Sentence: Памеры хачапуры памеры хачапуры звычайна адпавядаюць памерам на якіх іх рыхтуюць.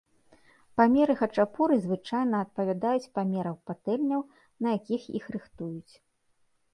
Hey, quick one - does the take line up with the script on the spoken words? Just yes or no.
no